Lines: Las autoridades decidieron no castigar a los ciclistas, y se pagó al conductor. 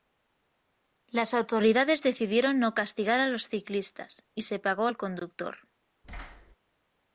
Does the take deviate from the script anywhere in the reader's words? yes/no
no